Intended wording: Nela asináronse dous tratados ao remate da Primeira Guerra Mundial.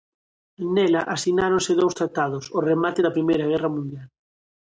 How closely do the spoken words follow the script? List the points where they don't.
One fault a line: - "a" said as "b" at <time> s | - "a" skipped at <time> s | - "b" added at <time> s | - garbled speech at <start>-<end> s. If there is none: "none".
none